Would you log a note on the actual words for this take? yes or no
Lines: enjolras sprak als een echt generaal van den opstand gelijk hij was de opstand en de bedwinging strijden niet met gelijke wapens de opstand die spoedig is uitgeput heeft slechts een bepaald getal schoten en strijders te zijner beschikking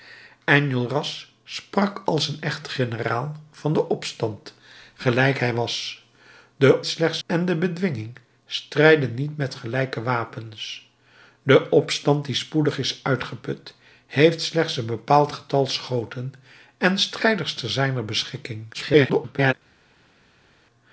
yes